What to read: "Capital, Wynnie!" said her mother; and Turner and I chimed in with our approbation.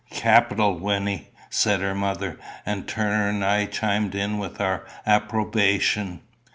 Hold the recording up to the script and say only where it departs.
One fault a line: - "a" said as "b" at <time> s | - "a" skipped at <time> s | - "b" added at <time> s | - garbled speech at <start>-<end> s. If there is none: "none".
none